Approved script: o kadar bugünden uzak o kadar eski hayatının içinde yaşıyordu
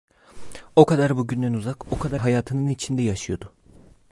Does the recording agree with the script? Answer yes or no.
no